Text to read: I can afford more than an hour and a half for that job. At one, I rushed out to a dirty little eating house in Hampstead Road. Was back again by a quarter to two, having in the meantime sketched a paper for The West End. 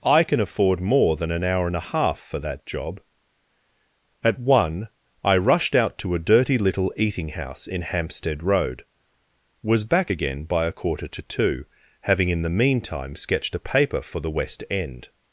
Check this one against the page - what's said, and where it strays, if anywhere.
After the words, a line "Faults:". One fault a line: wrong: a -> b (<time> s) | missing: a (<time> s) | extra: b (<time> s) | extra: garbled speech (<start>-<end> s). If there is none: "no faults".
I can afford more than an hour and a half for that job. At one, I rushed out to a dirty little eating house in Hampstead Road. Was back again by a quarter to two, having in the meantime sketched a paper for The West End.
Faults:
no faults